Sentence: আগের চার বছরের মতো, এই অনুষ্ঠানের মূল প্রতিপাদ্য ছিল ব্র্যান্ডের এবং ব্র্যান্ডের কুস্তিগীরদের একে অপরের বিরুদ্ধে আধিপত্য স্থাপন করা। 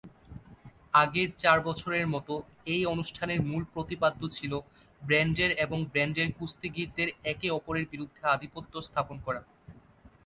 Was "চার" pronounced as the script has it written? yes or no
yes